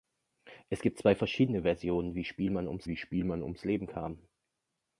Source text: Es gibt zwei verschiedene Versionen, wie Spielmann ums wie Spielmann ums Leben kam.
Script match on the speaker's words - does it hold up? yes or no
yes